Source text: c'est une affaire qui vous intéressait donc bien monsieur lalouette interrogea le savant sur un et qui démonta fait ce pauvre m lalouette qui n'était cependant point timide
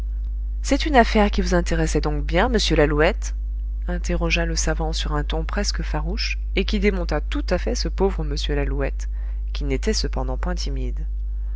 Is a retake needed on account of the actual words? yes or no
yes